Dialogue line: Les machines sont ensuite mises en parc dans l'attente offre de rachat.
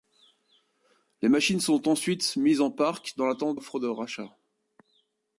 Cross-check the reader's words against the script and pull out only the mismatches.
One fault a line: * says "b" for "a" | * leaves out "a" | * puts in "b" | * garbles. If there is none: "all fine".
all fine